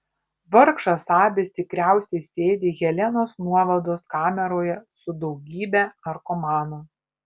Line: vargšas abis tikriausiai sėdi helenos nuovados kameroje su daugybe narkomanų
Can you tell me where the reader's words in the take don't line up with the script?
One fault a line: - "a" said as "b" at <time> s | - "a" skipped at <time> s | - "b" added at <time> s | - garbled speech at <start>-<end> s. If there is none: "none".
none